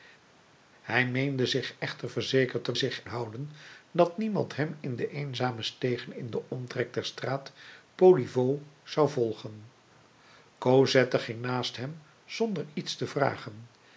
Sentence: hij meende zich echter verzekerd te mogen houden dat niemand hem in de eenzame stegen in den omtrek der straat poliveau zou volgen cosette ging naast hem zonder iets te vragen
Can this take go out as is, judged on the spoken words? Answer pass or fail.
fail